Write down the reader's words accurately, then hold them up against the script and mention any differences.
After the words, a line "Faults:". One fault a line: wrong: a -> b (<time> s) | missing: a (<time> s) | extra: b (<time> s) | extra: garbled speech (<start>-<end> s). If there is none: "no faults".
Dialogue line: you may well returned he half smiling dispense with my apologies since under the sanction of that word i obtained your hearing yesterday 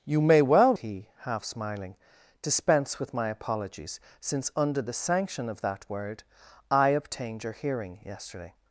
you may well he half smiling dispense with my apologies since under the sanction of that word i obtained your hearing yesterday
Faults:
missing: returned (0.7 s)